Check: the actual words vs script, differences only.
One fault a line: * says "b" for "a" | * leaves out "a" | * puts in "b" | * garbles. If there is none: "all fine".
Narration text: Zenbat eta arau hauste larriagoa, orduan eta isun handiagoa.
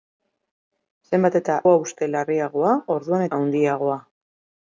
* leaves out "arau"
* leaves out "eta isun"